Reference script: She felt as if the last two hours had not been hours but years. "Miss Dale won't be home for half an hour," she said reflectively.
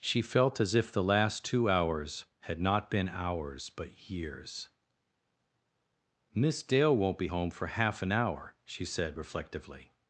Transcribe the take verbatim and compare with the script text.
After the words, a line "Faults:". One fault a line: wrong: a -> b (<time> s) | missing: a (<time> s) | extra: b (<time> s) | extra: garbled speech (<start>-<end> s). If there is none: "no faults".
She felt as if the last two hours had not been hours but years. "Miss Dale won't be home for half an hour," she said reflectively.
Faults:
no faults